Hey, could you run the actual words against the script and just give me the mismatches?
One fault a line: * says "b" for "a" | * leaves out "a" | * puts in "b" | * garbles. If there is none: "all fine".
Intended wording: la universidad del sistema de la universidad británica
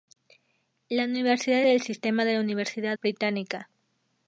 all fine